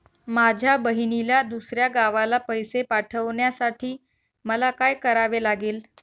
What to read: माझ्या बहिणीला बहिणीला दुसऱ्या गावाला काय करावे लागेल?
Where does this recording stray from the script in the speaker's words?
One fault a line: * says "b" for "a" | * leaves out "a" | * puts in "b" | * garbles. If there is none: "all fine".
* leaves out "बहिणीला"
* puts in "पैसे पाठवण्यासाठी मला"